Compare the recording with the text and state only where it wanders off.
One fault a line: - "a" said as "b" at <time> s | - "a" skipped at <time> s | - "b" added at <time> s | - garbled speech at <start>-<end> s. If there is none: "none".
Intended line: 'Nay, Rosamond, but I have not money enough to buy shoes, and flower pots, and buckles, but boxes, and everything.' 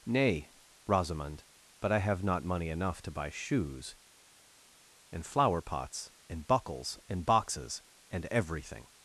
- "but" said as "and" at 7.1 s